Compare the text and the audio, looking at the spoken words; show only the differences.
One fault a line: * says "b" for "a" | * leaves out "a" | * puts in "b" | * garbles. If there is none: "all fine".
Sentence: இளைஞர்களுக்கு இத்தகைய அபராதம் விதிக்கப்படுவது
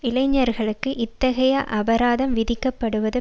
all fine